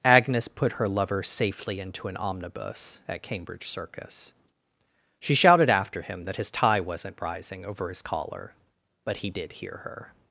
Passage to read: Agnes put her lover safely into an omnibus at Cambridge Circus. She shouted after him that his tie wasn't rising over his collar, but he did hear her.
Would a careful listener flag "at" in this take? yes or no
no